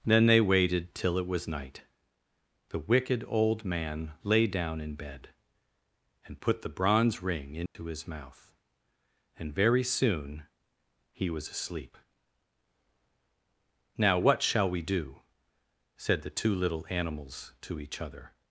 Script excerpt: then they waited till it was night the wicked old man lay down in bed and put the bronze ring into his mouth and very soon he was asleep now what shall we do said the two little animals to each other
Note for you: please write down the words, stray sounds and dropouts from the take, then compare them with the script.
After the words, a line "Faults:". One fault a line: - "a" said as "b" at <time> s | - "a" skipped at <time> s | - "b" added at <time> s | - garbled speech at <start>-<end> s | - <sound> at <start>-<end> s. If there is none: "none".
then they waited till it was night the wicked old man lay down in bed and put the bronze ring into his mouth and very soon he was asleep now what shall we do said the two little animals to each other
Faults:
- dropout at 7.7-7.7 s